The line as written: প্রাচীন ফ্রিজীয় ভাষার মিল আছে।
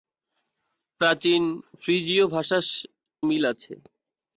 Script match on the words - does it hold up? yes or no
yes